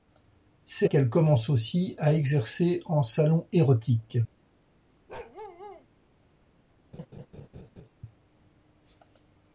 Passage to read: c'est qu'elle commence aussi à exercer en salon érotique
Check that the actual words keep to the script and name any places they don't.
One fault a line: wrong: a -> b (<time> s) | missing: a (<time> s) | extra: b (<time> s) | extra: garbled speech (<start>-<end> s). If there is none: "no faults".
no faults